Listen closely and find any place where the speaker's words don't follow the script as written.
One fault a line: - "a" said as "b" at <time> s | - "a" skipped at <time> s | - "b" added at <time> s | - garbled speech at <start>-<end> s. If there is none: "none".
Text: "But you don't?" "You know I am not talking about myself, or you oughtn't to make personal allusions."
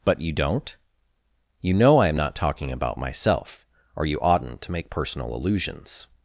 none